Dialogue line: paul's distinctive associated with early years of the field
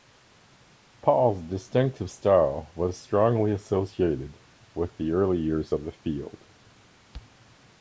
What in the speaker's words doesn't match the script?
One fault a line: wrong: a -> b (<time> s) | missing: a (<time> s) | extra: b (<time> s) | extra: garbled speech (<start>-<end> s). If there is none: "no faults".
extra: style was strongly (2.1 s)
extra: the (5.0 s)